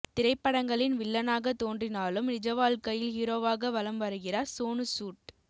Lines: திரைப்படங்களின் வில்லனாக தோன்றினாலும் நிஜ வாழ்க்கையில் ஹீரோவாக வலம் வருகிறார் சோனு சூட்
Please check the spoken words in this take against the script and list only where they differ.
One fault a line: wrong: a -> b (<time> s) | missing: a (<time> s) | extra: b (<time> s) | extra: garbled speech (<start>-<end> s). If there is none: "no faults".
no faults